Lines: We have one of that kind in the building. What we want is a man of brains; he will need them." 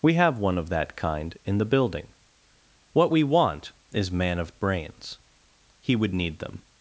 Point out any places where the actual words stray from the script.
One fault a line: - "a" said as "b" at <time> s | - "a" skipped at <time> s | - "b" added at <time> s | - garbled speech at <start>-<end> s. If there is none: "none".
- "a" skipped at 4.1 s
- "will" said as "would" at 5.9 s